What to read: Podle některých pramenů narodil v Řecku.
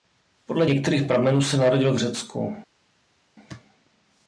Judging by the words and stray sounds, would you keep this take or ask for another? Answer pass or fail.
fail